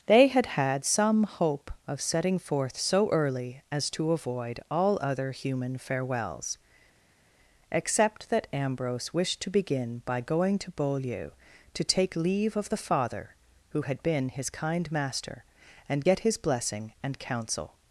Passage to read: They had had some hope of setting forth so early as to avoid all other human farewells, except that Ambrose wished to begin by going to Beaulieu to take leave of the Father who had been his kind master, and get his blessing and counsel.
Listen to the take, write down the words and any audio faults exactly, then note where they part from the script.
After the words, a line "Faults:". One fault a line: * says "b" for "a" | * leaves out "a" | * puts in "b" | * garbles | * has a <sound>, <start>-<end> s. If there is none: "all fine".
They had had some hope of setting forth so early as to avoid all other human farewells, except that Ambrose wished to begin by going to Beaulieu to take leave of the Father who had been his kind master, and get his blessing and counsel.
Faults:
all fine